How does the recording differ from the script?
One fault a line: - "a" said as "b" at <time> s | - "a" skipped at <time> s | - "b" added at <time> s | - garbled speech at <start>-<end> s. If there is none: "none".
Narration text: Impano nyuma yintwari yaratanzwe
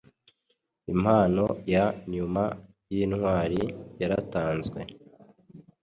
- "ya" added at 1.7 s